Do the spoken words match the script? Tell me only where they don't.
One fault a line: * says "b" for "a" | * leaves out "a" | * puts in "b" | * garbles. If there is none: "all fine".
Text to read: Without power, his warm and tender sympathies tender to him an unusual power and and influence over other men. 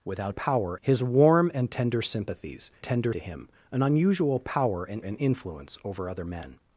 all fine